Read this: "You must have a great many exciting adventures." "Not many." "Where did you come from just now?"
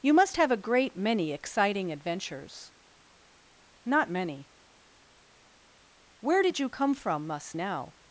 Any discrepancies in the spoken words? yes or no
yes